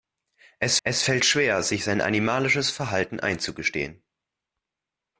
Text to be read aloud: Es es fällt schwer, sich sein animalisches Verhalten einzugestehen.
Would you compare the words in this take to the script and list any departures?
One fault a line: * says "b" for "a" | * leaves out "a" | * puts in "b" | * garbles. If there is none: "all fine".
all fine